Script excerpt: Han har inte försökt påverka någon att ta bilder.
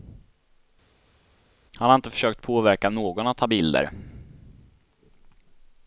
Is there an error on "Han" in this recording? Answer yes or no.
no